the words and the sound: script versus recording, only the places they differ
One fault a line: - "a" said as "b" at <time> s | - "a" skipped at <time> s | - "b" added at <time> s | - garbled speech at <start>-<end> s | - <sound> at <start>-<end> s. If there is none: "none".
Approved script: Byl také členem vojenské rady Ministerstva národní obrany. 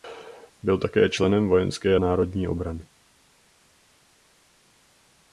- "rady Ministerstva" skipped at 2.0 s